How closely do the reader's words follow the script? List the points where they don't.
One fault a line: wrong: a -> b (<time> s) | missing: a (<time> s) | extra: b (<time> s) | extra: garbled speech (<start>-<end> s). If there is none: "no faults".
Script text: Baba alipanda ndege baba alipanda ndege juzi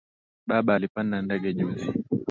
missing: baba alipanda ndege (1.5 s)